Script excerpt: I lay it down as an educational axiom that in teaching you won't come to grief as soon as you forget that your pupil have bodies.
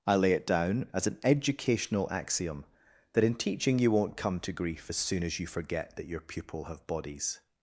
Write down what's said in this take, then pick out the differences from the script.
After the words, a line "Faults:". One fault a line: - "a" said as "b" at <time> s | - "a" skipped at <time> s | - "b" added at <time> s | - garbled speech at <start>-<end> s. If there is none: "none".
I lay it down as an educational axiom that in teaching you won't come to grief as soon as you forget that your pupil have bodies.
Faults:
none